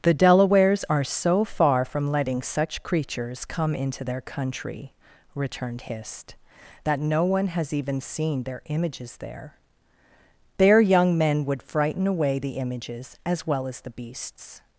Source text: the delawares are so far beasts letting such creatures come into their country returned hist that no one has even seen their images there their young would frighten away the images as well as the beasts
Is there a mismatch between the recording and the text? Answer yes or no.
yes